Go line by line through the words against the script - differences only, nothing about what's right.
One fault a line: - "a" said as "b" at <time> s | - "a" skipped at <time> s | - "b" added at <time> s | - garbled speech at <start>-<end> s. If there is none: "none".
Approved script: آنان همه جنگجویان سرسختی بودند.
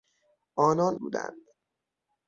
- "همه جنگجویان سرسختی" skipped at 1.0 s